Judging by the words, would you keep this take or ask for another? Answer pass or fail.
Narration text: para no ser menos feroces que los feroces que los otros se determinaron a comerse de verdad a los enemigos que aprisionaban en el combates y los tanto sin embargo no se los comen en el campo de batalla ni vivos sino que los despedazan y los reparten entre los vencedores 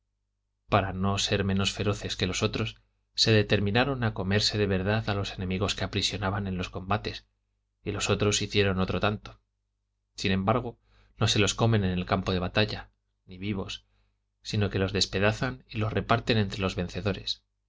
fail